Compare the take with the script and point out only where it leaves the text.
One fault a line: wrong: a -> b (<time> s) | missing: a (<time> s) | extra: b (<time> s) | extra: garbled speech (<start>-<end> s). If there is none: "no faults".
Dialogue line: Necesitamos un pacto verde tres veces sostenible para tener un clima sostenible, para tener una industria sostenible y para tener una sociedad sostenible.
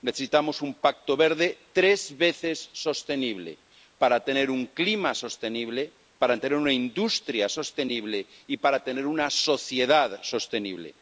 no faults